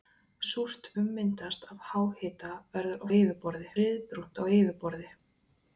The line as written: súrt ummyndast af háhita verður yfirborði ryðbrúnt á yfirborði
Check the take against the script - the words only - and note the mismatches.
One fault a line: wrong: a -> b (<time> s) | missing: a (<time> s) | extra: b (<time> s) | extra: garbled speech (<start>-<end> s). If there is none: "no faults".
no faults